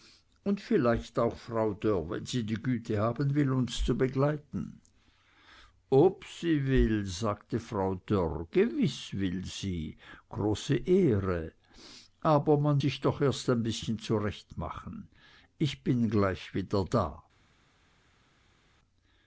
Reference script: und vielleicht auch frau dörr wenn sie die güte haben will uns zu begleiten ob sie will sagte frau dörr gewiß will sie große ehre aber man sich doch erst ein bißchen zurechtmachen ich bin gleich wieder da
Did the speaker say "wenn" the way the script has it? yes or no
yes